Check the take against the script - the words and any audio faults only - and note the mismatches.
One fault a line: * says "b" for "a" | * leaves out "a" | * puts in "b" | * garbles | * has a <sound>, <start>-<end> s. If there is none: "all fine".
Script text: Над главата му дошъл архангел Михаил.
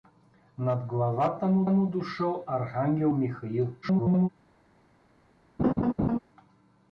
* puts in "му"
* garbles
* has a laugh, 5.6-6.2 s